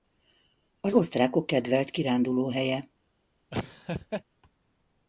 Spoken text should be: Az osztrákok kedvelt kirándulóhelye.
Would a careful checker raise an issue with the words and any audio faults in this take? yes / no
yes